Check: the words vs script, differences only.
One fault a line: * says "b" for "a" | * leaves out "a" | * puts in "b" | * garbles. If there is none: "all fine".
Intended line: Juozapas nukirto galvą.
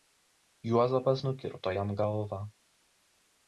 * puts in "jam"